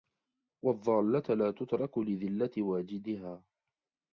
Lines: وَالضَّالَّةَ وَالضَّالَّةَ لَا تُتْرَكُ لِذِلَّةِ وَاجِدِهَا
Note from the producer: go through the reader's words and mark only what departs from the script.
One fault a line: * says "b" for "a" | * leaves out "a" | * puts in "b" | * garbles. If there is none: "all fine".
* leaves out "وَالضَّالَّةَ"